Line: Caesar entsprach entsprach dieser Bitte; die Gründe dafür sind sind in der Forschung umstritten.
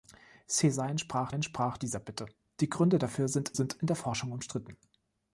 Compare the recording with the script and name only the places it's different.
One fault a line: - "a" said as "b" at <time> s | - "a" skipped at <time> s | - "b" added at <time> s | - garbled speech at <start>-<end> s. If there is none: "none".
none